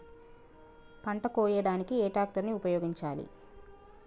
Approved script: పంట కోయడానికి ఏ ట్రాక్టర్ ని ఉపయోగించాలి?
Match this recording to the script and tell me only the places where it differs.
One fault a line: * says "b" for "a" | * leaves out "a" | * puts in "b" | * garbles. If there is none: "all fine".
all fine